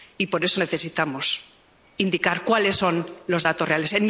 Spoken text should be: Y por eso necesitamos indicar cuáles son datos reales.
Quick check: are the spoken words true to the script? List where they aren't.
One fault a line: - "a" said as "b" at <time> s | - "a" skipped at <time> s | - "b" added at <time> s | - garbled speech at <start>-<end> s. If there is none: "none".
- "los" added at 3.3 s